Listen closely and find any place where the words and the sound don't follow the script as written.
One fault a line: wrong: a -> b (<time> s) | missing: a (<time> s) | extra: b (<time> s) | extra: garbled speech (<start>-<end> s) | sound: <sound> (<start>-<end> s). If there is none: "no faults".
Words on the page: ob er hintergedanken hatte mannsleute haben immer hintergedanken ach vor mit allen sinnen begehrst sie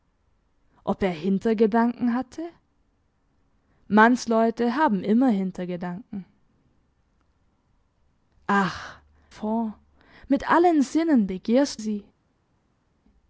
no faults